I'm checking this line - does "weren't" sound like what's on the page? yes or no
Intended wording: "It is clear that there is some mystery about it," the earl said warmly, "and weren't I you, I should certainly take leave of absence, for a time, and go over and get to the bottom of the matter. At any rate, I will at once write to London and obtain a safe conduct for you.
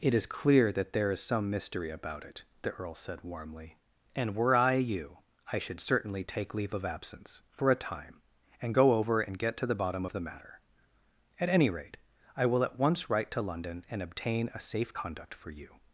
no